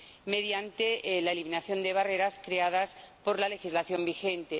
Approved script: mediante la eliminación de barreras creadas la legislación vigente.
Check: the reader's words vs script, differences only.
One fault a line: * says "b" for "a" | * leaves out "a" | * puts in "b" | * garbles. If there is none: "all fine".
* puts in "por"